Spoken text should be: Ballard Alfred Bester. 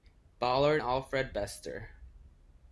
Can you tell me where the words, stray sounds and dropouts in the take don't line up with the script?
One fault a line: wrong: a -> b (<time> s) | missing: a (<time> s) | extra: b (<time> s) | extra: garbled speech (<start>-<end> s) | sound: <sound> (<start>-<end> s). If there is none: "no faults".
no faults